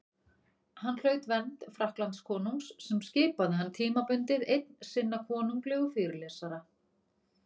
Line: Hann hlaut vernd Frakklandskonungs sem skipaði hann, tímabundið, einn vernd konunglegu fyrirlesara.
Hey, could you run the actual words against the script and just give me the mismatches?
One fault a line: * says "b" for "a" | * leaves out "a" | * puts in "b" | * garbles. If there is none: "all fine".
* says "sinna" for "vernd"